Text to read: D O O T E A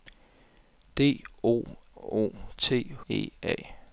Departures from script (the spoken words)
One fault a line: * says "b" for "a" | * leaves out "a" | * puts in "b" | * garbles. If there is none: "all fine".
all fine